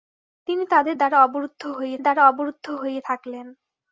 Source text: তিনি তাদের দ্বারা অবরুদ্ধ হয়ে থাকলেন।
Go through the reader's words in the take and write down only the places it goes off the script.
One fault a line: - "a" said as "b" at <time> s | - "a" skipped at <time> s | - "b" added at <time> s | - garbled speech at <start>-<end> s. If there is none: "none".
- "দ্বারা অবরুদ্ধ হয়ে" added at 2.0 s